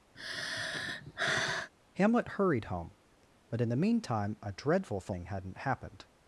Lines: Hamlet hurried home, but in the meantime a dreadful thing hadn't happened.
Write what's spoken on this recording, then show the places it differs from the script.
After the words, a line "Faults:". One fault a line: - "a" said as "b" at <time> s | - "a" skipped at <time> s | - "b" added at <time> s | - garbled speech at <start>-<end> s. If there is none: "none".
Hamlet hurried home, but in the meantime a dreadful thing hadn't happened.
Faults:
none